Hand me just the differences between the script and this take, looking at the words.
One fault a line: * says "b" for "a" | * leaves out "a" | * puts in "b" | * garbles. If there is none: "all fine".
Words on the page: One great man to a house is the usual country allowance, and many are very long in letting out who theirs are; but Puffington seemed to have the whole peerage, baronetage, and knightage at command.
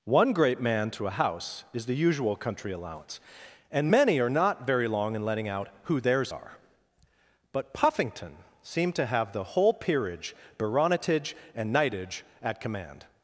* puts in "not"